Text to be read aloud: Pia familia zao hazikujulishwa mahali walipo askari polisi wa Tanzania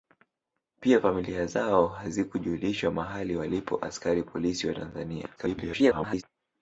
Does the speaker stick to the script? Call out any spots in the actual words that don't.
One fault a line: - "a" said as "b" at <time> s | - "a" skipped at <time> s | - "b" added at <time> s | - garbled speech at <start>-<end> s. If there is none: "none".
- garbled speech at 5.4-6.2 s